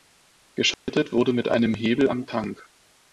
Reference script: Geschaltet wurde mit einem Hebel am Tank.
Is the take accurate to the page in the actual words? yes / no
yes